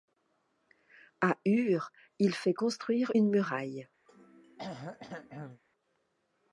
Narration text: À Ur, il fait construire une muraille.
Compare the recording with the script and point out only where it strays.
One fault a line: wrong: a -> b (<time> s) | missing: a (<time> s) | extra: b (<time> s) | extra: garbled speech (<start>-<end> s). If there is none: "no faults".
no faults